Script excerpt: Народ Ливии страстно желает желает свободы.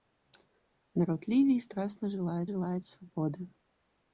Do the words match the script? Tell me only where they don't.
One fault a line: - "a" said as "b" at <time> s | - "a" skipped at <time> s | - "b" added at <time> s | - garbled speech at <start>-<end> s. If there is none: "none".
none